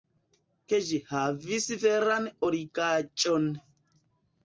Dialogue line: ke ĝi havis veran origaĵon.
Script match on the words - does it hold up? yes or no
yes